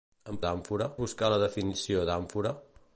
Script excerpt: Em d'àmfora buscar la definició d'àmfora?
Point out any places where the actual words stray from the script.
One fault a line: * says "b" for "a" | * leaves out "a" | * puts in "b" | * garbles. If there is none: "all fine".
all fine